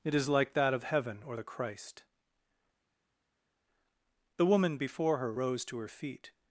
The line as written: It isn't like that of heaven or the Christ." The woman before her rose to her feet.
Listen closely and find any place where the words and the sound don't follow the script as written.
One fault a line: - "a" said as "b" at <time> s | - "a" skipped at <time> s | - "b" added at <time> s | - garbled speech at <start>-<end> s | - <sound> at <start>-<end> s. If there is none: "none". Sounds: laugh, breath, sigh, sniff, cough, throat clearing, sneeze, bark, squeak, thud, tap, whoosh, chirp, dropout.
- "isn't" said as "is" at 0.1 s